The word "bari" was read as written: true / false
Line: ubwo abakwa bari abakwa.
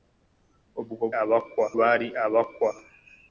true